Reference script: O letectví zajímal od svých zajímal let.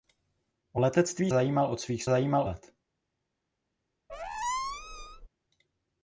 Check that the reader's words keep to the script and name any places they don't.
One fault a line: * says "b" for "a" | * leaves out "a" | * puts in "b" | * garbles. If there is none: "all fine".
all fine